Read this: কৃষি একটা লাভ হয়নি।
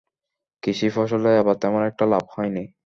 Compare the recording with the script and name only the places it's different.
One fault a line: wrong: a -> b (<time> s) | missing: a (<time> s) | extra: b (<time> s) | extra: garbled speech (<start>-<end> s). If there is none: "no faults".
extra: ফসলে এবার তেমন (0.9 s)